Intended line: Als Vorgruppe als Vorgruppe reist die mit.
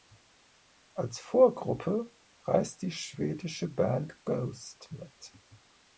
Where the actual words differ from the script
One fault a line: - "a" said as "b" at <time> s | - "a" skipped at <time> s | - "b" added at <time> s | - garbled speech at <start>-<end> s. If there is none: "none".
- "als Vorgruppe reist die" said as "reist die schwedische Band Ghost" at 2.5 s